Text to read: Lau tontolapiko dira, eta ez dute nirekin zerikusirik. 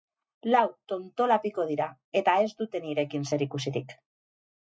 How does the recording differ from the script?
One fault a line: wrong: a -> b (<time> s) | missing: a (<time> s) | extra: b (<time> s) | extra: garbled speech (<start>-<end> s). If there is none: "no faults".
no faults